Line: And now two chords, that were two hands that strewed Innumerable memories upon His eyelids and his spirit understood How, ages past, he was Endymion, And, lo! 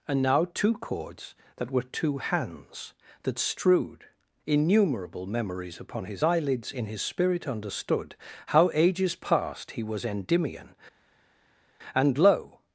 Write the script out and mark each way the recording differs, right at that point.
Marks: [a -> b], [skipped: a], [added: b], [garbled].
And now two chords, that were two hands that strewed Innumerable memories upon His eyelids [and -> in] his spirit understood How, ages past, he was Endymion, And, lo!